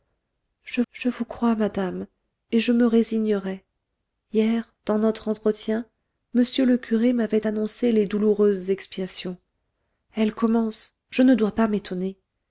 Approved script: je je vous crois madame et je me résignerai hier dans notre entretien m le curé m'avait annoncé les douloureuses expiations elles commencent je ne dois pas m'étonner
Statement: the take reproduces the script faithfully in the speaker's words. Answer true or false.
true